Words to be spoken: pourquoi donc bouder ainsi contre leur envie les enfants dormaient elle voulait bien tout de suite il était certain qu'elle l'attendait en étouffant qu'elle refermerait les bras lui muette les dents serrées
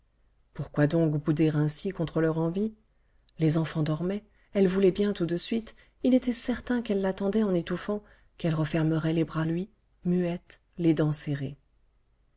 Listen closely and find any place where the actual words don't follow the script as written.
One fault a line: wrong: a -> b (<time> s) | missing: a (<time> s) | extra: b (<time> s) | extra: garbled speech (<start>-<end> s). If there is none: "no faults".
no faults